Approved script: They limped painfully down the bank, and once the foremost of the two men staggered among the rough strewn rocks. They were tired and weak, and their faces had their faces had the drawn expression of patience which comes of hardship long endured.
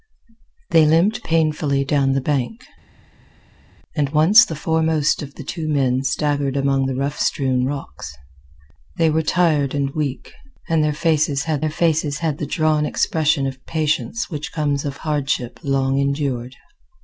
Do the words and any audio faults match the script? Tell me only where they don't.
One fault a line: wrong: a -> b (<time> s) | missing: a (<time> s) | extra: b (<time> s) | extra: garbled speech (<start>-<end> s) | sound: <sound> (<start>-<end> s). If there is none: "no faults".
no faults